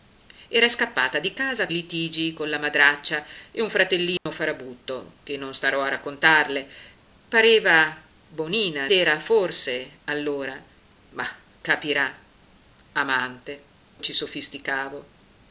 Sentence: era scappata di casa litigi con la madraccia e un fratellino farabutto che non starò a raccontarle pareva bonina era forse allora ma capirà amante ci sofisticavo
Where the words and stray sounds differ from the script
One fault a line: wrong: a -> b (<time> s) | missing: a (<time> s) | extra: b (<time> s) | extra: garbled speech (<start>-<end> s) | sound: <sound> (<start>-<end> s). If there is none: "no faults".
sound: dropout (4.2-4.3 s)